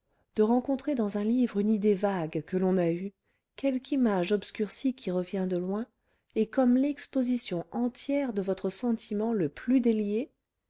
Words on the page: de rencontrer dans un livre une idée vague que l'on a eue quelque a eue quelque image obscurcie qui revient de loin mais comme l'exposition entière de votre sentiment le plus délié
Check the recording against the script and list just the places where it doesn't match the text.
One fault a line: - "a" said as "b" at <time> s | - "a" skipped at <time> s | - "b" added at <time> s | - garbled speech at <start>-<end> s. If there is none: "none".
- "a eue quelque" skipped at 3.9 s
- "mais" said as "et" at 6.3 s